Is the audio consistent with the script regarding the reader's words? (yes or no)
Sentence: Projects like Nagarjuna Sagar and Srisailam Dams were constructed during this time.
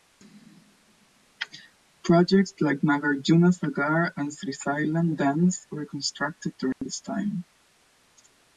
yes